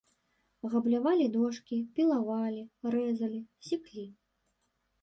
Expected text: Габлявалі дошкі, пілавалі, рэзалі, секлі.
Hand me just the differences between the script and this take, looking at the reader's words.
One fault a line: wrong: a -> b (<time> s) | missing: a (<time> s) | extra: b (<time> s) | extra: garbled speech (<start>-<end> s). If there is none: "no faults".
no faults